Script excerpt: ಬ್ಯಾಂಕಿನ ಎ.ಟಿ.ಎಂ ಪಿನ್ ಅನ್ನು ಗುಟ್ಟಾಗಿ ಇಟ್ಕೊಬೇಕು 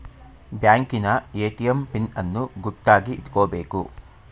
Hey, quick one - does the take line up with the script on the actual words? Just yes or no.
yes